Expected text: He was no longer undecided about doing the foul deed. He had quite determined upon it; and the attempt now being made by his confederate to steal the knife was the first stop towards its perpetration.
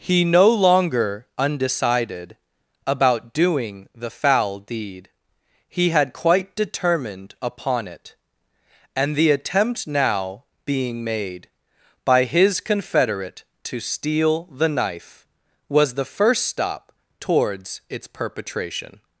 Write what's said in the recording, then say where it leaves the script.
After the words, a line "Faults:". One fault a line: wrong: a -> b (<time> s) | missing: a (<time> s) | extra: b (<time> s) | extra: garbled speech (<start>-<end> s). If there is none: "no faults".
He no longer undecided about doing the foul deed. He had quite determined upon it; and the attempt now being made by his confederate to steal the knife was the first stop towards its perpetration.
Faults:
missing: was (0.2 s)